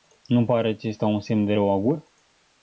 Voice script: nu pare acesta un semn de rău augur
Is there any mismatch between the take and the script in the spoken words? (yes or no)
no